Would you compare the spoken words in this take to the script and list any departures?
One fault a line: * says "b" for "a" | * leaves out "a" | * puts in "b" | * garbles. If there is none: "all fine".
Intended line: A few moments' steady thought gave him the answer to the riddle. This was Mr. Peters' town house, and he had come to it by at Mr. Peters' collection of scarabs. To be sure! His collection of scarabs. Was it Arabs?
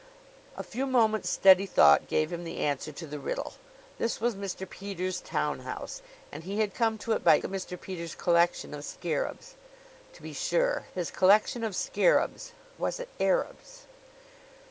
all fine